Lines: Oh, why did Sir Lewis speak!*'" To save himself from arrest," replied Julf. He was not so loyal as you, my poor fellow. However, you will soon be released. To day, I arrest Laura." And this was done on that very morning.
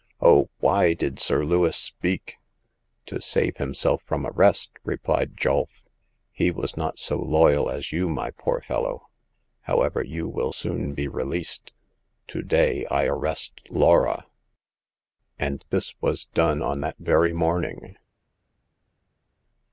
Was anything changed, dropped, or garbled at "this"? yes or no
no